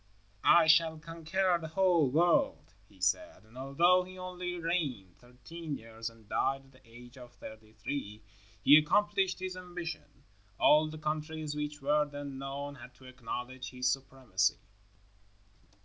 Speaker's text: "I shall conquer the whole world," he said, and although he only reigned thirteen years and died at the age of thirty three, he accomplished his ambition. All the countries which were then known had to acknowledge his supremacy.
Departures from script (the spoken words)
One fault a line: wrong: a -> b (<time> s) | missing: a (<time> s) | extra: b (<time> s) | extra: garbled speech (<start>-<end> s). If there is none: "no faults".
no faults